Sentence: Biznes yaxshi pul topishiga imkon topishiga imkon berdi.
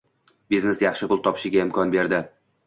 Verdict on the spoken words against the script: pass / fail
fail